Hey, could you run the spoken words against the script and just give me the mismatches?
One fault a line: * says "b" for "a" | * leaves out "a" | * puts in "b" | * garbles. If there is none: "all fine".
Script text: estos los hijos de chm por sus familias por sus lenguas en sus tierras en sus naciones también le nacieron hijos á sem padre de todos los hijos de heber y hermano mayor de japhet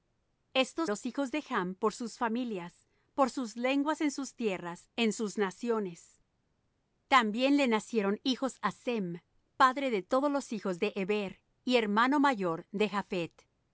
all fine